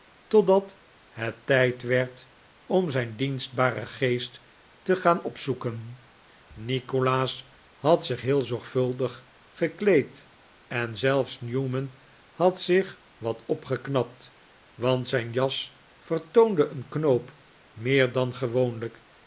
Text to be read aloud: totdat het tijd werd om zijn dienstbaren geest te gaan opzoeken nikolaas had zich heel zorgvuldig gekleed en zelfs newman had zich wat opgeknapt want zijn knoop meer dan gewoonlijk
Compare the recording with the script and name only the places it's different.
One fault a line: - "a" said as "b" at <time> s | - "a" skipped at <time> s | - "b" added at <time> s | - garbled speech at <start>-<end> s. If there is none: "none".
- "jas vertoonde een" added at 15.3 s